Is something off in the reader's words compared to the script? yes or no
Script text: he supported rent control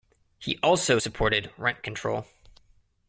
yes